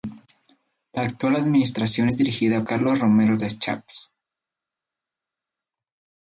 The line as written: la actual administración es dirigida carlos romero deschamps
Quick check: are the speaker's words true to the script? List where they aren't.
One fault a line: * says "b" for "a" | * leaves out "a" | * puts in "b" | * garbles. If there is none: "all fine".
all fine